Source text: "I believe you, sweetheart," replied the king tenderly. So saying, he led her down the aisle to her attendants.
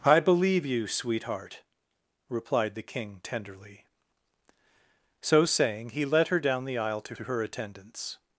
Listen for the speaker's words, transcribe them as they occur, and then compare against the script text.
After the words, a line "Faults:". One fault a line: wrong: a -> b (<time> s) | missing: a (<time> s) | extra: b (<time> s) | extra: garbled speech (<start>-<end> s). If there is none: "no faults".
"I believe you, sweetheart," replied the king tenderly. So saying, he led her down the aisle to to her attendants.
Faults:
extra: to (7.1 s)